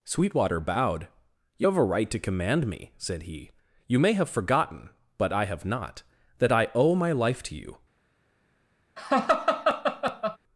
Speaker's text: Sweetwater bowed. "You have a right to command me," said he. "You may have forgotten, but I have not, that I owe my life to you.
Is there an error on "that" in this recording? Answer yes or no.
no